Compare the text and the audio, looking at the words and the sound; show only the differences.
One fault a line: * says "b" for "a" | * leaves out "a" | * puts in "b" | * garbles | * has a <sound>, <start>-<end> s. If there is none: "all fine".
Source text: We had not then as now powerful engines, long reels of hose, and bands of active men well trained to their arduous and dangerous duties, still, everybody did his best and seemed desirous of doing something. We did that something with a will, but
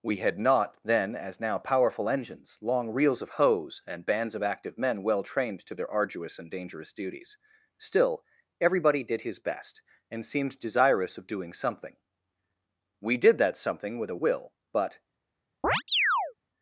* has a chirp, 15.6-16.3 s